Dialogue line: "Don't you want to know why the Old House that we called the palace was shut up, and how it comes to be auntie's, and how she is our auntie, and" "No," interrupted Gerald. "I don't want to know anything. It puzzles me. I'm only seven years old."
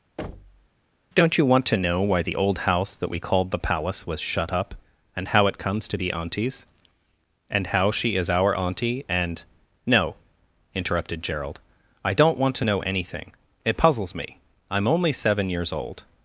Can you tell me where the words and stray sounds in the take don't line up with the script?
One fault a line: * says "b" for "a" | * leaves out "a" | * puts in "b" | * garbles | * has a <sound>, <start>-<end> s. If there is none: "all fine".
* has a thud, 0.2-0.7 s